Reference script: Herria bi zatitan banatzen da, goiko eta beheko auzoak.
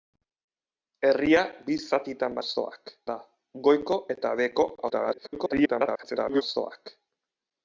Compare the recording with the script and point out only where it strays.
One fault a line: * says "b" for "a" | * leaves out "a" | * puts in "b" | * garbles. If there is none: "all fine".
* says "auzoak" for "banatzen"
* garbles